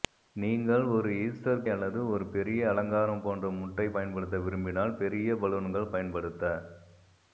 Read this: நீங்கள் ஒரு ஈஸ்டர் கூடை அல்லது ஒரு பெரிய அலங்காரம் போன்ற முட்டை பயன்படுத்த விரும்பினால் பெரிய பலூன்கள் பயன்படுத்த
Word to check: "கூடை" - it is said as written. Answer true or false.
false